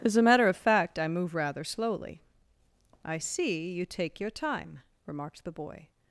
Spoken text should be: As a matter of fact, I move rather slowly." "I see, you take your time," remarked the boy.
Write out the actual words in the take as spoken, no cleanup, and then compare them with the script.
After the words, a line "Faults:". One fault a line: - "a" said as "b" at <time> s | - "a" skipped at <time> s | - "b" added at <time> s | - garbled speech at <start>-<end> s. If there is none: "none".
As a matter of fact, I move rather slowly." "I see, you take your time," remarked the boy.
Faults:
none